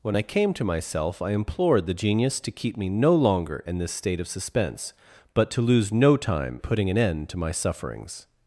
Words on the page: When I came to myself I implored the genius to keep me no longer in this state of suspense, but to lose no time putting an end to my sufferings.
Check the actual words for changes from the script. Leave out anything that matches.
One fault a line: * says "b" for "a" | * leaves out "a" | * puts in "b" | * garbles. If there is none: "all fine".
all fine